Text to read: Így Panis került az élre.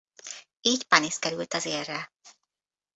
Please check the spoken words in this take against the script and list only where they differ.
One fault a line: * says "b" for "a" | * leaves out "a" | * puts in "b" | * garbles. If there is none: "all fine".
all fine